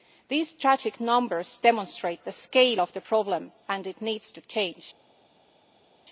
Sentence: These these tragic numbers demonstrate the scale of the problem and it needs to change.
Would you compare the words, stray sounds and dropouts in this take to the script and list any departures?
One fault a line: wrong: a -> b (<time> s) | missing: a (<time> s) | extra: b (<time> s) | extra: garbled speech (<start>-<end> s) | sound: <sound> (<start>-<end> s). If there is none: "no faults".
missing: these (0.5 s)